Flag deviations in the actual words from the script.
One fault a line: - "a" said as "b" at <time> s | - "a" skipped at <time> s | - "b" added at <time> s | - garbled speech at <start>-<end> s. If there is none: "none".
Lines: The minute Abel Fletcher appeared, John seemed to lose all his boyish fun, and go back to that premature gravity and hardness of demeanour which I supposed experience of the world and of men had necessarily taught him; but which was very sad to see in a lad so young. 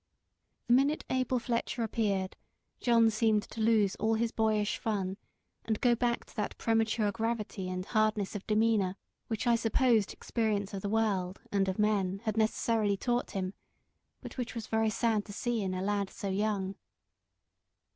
none